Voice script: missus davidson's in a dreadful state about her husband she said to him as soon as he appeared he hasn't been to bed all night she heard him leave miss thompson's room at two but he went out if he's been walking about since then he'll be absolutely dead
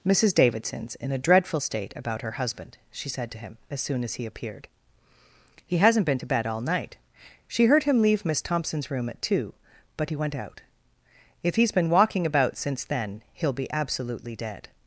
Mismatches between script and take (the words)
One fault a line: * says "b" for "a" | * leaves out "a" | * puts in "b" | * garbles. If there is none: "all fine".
all fine